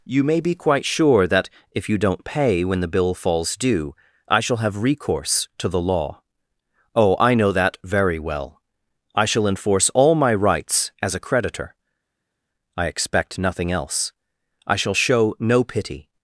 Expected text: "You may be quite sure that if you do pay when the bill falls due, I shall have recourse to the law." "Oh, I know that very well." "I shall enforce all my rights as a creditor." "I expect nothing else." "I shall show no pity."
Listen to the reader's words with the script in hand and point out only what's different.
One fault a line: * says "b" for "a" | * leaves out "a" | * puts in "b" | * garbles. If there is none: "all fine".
* says "don't" for "do"